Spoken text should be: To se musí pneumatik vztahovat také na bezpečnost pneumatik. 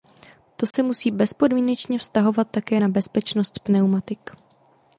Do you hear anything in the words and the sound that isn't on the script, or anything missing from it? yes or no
yes